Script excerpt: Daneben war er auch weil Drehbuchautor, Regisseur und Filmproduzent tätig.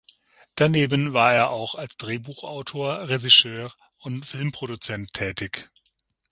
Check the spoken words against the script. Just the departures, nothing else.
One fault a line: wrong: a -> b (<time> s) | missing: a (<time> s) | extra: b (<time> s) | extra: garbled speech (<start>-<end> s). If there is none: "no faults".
wrong: weil -> als (1.8 s)